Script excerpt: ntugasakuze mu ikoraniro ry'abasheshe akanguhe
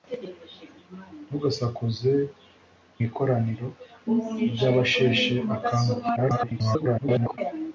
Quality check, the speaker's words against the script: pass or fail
fail